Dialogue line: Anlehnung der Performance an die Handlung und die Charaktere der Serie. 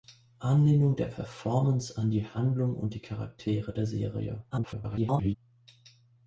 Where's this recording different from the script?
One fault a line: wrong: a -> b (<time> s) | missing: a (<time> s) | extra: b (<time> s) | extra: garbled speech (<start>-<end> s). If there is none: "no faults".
extra: garbled speech (4.5-5.4 s)